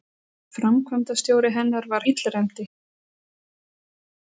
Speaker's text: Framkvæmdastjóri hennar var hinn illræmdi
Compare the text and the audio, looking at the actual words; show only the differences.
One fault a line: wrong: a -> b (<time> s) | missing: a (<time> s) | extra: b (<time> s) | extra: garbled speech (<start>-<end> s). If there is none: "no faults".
missing: hinn (2.1 s)